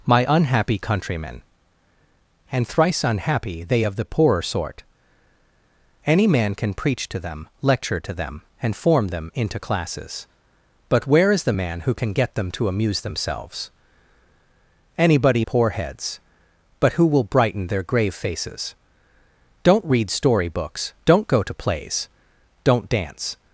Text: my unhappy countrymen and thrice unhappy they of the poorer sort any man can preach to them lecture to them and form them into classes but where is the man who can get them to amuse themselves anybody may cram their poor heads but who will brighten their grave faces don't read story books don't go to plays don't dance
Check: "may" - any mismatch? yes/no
yes